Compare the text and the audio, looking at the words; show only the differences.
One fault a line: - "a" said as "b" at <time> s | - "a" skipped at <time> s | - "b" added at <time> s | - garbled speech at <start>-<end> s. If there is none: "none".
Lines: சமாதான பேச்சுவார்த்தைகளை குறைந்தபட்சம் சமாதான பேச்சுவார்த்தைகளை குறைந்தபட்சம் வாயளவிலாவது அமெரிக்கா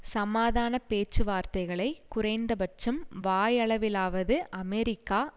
- "சமாதான பேச்சுவார்த்தைகளை குறைந்தபட்சம்" skipped at 3.0 s